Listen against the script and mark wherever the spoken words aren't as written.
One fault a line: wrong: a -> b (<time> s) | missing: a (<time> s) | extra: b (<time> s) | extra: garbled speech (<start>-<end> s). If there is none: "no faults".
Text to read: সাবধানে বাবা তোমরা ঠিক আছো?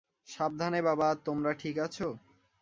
no faults